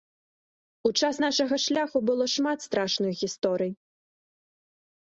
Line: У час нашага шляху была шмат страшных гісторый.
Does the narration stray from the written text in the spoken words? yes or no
yes